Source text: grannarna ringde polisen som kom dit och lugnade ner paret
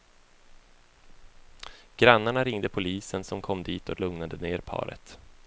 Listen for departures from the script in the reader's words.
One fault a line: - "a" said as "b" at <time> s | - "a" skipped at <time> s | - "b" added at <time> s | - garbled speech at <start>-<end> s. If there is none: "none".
none